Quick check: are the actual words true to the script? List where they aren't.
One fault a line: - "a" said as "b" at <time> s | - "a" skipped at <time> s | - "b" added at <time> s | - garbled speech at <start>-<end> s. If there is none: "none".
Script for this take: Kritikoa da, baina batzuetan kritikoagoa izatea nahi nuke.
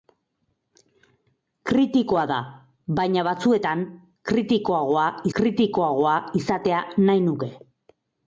- "kritikoagoa" added at 5.4 s